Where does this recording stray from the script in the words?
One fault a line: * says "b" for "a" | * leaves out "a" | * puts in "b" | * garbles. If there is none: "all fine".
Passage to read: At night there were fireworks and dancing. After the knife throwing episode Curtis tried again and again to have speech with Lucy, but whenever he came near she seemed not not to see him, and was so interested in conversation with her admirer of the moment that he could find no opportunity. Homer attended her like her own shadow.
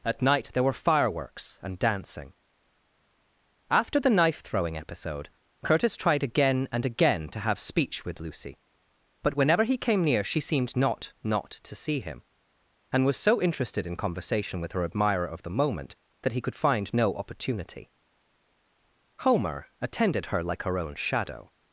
all fine